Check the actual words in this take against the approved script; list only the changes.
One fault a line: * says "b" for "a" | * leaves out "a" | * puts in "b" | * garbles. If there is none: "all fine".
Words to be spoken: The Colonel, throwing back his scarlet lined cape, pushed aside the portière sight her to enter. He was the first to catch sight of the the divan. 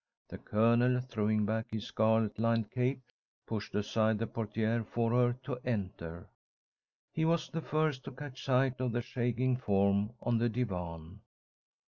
* says "for" for "sight"
* puts in "shaking form on"